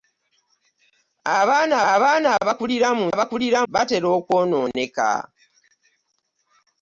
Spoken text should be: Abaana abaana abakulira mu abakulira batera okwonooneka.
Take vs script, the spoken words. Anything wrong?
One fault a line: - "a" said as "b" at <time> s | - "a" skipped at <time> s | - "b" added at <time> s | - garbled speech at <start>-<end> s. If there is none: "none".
none